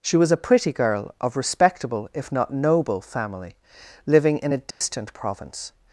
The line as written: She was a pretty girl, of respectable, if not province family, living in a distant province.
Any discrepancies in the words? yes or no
yes